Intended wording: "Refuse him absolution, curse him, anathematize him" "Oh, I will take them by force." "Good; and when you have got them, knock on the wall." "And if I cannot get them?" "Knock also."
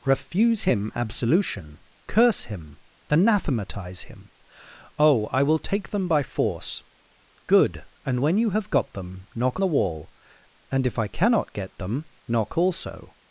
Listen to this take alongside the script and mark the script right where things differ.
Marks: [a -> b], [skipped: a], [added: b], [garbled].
"Refuse him absolution, curse him, anathematize him" "Oh, I will take them by force." "Good; and when you have got them, knock [skipped: on] the wall." "And if I cannot get them?" "Knock also."